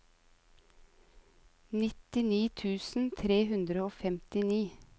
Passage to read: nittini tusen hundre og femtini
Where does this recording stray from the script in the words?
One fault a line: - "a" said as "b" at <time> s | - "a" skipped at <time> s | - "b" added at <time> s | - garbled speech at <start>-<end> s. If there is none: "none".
- "tre" added at 3.2 s